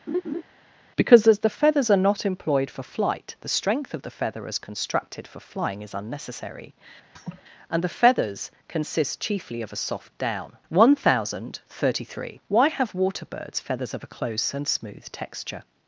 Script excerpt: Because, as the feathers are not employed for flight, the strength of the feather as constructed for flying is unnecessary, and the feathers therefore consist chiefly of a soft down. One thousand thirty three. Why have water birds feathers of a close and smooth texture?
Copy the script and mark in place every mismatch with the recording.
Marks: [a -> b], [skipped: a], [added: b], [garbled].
Because, as the feathers are not employed for flight, the strength of the feather as constructed for flying is unnecessary, and the feathers [skipped: therefore] consist chiefly of a soft down. One thousand thirty three. Why have water birds feathers of a close and smooth texture?